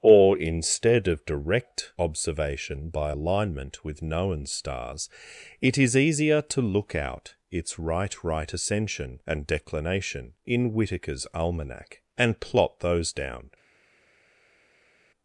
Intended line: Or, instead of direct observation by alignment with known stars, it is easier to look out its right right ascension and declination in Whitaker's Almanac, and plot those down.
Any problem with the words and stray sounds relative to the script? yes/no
no